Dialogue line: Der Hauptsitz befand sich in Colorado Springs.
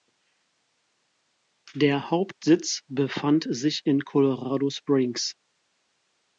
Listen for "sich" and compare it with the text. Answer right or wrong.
right